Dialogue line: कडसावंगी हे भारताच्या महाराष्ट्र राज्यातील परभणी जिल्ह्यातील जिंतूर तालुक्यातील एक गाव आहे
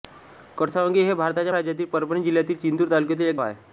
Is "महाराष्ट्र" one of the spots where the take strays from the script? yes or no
yes